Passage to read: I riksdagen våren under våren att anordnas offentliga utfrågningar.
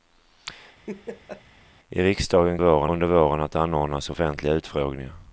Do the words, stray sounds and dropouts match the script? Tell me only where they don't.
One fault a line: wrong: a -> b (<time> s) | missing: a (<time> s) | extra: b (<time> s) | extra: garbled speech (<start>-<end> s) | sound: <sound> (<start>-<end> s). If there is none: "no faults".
sound: laugh (0.9-1.4 s)